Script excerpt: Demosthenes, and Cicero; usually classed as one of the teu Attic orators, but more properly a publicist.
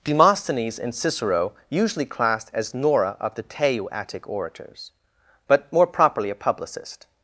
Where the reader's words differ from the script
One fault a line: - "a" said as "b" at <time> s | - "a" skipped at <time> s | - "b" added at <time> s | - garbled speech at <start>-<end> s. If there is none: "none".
- "one" said as "nora" at 2.7 s